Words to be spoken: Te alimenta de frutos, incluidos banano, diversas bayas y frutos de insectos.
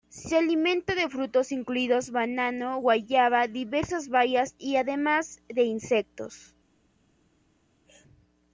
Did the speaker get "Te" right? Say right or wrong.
wrong